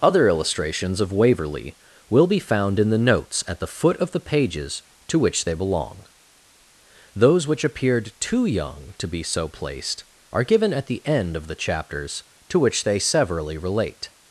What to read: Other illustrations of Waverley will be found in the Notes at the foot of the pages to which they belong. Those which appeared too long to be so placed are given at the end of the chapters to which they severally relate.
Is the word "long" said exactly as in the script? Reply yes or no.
no